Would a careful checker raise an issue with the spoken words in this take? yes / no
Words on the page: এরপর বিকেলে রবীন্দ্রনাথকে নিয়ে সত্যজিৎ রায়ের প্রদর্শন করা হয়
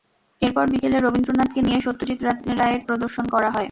no